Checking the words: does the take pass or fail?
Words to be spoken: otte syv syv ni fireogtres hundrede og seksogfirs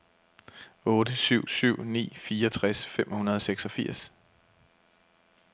fail